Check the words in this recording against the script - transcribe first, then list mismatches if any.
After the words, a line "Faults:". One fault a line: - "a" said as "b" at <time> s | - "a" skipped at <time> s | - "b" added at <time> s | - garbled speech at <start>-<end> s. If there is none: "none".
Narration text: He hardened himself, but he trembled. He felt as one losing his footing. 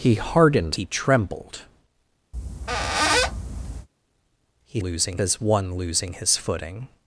He hardened he trembled. He losing as one losing his footing.
Faults:
- "himself but" skipped at 0.8 s
- "felt" said as "losing" at 4.8 s